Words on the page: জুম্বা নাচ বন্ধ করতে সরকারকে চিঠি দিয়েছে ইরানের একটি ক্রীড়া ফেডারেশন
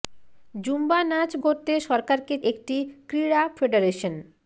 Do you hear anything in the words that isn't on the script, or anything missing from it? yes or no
yes